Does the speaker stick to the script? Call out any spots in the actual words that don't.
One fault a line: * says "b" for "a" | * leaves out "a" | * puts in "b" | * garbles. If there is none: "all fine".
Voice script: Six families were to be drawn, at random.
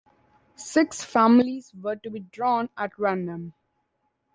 all fine